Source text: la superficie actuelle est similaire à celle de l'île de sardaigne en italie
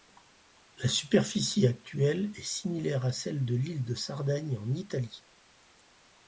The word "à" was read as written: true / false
true